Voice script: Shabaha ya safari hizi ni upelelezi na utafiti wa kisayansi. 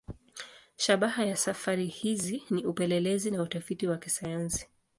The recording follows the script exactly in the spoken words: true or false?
true